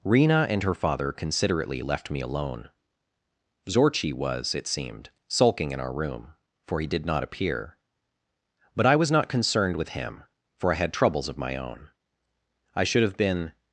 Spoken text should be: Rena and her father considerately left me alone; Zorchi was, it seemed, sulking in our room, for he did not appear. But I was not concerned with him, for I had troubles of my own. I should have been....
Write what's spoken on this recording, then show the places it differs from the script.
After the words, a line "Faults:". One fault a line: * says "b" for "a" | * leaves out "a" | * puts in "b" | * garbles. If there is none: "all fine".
Rena and her father considerately left me alone; Zorchi was, it seemed, sulking in our room, for he did not appear. But I was not concerned with him, for I had troubles of my own. I should have been....
Faults:
all fine